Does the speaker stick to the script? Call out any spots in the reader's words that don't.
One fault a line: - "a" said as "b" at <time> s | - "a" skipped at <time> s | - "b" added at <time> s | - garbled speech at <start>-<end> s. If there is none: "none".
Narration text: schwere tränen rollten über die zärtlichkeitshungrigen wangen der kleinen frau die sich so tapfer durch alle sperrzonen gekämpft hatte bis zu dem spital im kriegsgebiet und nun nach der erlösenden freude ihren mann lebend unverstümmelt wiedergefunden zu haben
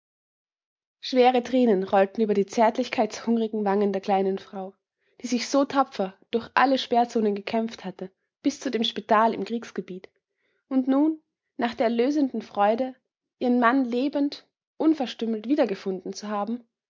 none